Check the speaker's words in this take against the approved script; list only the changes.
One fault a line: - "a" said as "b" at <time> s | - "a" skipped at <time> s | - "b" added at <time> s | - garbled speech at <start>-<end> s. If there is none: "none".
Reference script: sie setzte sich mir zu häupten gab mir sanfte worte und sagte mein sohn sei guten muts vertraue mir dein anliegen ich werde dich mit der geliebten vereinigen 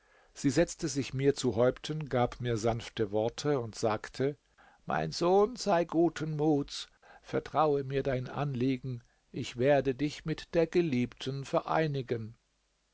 none